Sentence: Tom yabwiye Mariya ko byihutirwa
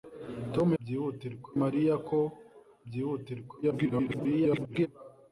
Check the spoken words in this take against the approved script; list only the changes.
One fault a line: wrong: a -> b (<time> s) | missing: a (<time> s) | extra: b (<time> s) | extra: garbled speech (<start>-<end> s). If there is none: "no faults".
wrong: yabwiye -> byihutirwa (0.8 s)
extra: garbled speech (3.6-4.9 s)